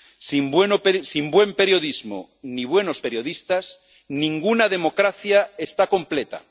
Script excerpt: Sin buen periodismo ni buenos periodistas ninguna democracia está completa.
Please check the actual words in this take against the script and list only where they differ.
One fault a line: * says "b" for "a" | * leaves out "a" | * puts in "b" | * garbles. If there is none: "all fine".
all fine